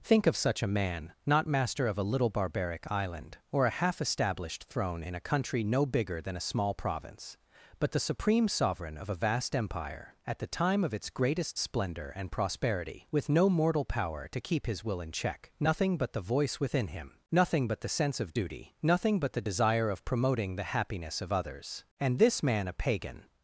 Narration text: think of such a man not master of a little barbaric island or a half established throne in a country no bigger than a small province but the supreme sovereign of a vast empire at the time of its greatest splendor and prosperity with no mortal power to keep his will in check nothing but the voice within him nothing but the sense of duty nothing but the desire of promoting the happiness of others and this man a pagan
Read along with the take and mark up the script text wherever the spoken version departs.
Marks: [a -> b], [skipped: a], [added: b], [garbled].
think of such a man not master of a little barbaric island or a half established throne in a country no bigger than a small province but the supreme sovereign of a vast empire at the time of its greatest splendor and prosperity with no mortal power to keep his will in check nothing but the voice within him nothing but the sense of duty nothing but the desire of promoting the happiness of others and this man a pagan